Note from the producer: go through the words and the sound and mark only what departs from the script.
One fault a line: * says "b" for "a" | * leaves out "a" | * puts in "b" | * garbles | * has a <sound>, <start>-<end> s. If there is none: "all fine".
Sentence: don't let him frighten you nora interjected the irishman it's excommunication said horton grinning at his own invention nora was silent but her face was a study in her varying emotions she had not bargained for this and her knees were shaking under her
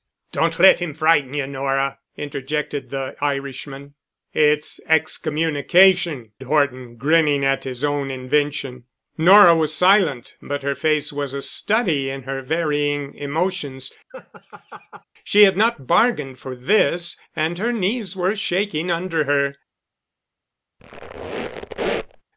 * leaves out "said"
* has a laugh, 14.1-15.0 s
* has a squeak, 20.8-22.2 s